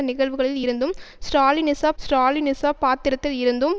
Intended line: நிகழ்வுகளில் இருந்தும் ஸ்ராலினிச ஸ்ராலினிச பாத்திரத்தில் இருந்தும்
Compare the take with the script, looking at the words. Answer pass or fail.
pass